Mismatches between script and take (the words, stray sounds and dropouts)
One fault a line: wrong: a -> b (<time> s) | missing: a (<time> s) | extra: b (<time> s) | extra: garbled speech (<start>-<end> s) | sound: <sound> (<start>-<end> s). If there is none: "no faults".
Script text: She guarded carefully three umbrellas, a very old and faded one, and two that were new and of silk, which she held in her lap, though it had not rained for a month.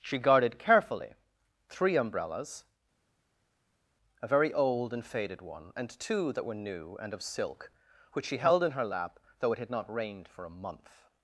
no faults